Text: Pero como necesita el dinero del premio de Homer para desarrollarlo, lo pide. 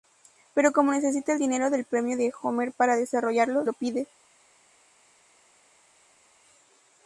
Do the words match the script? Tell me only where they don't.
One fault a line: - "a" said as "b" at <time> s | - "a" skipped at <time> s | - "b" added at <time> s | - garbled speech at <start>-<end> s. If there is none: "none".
none